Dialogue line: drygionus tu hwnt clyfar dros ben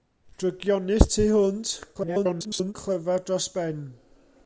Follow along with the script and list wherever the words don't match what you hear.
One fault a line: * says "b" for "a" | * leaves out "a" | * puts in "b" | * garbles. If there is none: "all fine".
* garbles